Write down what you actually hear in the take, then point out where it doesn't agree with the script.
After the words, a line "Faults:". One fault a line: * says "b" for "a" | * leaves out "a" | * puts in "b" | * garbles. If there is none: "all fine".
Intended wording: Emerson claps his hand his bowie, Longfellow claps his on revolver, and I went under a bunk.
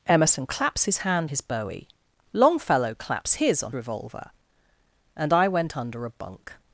Emerson claps his hand his bowie, Longfellow claps his on revolver, and I went under a bunk.
Faults:
all fine